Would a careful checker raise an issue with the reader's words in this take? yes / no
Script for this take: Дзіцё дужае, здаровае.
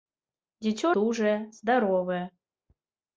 no